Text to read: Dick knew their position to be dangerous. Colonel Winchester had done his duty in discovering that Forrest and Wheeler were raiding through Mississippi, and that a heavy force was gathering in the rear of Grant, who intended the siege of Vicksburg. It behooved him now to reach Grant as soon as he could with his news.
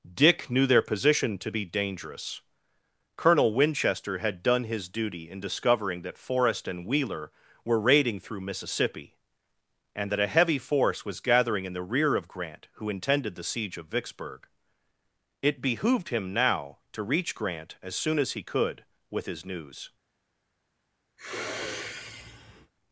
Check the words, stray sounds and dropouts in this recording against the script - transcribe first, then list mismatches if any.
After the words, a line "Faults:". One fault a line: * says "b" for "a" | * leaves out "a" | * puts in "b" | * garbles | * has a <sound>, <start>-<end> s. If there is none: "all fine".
Dick knew their position to be dangerous. Colonel Winchester had done his duty in discovering that Forrest and Wheeler were raiding through Mississippi, and that a heavy force was gathering in the rear of Grant, who intended the siege of Vicksburg. It behooved him now to reach Grant as soon as he could with his news.
Faults:
* has a sniff, 21.2-22.7 s